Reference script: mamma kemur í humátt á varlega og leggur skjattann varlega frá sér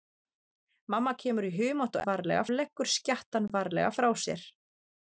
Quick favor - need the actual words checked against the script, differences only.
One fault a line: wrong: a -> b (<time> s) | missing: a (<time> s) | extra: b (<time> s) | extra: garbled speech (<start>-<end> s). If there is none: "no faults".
no faults